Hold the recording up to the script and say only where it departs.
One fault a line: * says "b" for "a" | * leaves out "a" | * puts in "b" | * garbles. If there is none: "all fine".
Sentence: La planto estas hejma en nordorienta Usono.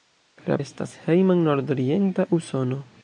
* leaves out "planto"